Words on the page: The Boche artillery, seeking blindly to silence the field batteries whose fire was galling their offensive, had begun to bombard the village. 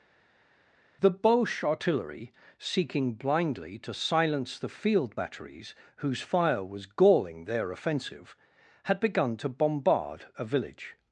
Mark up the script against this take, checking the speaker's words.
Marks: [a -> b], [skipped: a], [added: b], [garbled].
The Boche artillery, seeking blindly to silence the field batteries whose fire was galling their offensive, had begun to bombard [the -> a] village.